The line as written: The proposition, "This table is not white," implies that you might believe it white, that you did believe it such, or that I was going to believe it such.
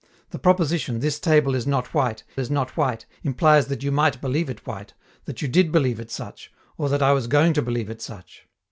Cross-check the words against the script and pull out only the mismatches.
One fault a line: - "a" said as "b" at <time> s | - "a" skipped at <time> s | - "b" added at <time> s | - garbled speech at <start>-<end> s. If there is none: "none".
- "is not white" added at 2.4 s